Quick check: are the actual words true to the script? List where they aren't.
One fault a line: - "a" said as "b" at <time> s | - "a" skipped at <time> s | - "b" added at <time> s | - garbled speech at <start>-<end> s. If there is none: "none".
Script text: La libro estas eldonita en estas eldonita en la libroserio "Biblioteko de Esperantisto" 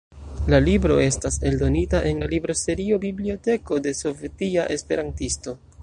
- "estas eldonita en" skipped at 2.2 s
- "Sovetia" added at 4.0 s